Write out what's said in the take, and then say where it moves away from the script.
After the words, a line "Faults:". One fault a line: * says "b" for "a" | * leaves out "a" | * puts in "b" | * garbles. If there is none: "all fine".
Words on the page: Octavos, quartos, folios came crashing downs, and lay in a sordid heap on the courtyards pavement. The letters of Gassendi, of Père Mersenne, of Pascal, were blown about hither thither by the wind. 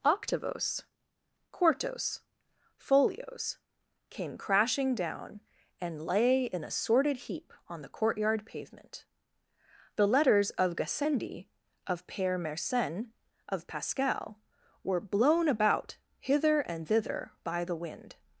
Octavos, quartos, folios came crashing down, and lay in a sordid heap on the courtyard pavement. The letters of Gassendi, of Père Mersenne, of Pascal, were blown about hither and thither by the wind.
Faults:
* says "down" for "downs"
* says "courtyard" for "courtyards"
* puts in "and"